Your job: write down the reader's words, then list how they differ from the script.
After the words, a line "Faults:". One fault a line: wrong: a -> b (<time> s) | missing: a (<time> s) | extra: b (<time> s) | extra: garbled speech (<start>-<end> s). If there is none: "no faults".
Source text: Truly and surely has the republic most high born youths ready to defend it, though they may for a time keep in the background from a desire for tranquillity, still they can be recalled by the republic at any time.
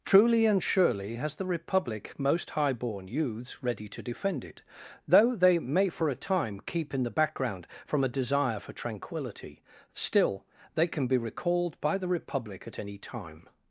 Truly and surely has the republic most high born youths ready to defend it, though they may for a time keep in the background from a desire for tranquillity, still they can be recalled by the republic at any time.
Faults:
no faults